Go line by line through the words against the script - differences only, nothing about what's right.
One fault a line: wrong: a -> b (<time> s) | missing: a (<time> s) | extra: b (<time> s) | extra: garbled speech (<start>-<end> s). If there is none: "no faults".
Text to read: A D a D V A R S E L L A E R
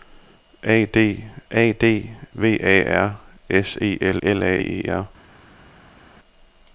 no faults